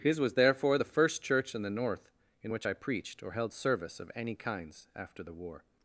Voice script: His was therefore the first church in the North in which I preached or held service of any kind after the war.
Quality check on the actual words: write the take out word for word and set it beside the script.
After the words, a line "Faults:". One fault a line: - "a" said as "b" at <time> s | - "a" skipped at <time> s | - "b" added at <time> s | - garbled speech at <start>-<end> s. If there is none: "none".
His was therefore the first church in the North in which I preached or held service of any kinds after the war.
Faults:
- "kind" said as "kinds" at 4.4 s